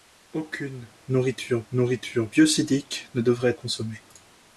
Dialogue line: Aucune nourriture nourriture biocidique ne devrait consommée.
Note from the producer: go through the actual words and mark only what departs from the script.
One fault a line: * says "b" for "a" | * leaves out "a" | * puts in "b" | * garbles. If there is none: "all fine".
all fine